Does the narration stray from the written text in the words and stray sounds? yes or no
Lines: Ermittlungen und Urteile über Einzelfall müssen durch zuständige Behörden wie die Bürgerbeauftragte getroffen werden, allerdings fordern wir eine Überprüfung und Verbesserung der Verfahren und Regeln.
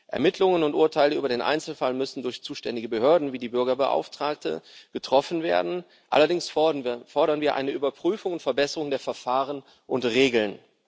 yes